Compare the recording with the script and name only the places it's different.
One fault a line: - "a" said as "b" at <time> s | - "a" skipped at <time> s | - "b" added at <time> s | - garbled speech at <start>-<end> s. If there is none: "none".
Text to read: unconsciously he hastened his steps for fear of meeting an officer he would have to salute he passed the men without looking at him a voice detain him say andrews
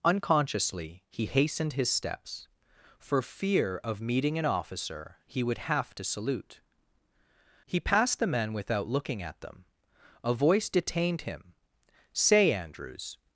- "him" said as "them" at 9.4 s
- "detain" said as "detained" at 10.7 s